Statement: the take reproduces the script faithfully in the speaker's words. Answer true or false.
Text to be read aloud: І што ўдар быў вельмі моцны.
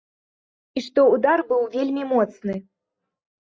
true